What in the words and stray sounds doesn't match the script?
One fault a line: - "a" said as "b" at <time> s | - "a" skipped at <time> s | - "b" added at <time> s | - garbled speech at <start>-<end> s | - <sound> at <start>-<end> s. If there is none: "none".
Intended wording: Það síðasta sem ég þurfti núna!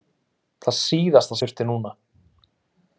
- "sem" skipped at 1.4 s